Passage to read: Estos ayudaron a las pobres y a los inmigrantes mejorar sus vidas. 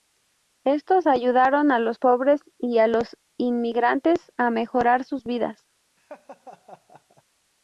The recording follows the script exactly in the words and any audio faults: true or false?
false